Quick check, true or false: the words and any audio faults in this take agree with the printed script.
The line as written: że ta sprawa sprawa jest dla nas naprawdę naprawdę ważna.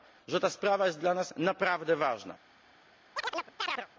false